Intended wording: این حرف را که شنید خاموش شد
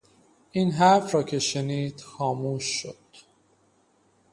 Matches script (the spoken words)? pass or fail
pass